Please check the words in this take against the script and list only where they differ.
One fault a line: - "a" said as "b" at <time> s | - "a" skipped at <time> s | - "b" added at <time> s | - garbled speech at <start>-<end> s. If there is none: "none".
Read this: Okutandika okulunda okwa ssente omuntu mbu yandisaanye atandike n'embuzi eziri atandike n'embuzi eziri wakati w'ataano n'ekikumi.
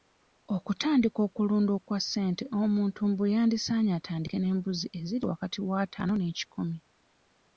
- "atandike n'embuzi eziri" skipped at 5.2 s